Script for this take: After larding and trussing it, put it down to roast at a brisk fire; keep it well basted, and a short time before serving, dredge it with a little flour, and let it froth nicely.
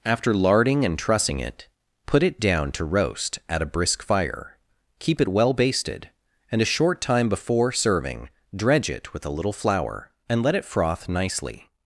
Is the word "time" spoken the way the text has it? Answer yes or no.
yes